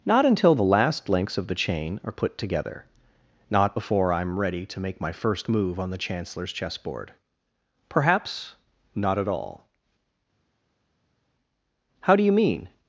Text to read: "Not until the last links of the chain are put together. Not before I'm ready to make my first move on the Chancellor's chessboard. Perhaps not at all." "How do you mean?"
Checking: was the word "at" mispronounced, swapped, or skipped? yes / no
no